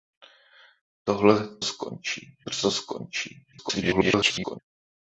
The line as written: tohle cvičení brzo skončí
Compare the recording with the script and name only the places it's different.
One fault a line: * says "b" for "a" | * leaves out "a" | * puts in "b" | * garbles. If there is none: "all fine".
* says "skončí" for "cvičení"
* garbles